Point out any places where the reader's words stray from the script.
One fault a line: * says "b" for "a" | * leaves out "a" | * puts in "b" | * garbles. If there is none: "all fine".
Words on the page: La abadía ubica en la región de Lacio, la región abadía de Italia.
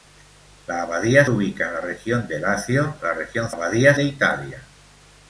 all fine